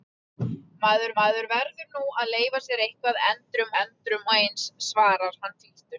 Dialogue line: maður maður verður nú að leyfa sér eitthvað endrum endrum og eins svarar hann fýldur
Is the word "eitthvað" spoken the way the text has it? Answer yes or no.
yes